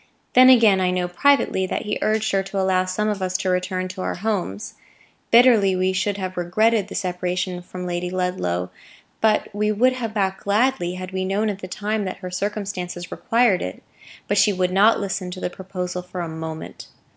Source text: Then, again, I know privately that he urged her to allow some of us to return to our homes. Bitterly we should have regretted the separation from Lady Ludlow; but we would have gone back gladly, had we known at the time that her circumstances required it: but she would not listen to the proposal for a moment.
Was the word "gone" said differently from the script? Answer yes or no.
yes